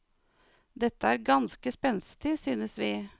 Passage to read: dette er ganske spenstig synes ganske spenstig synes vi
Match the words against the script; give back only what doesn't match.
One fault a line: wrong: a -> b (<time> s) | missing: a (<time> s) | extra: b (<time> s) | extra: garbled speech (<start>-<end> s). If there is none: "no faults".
missing: ganske spenstig synes (2.8 s)